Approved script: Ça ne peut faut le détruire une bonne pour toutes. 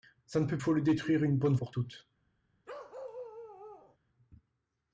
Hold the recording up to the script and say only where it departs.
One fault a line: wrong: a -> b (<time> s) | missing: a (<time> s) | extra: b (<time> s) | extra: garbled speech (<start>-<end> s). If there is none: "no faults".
no faults